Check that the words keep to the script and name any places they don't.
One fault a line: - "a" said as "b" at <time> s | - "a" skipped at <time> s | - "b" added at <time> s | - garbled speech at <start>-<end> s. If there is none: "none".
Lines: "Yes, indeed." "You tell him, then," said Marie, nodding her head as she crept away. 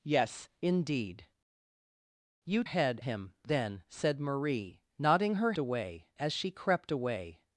- "tell" said as "head" at 2.6 s
- "head" said as "away" at 5.6 s